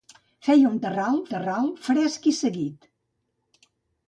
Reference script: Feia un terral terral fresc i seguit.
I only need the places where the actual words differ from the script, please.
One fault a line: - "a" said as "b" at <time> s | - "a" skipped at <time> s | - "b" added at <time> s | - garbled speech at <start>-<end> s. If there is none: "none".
none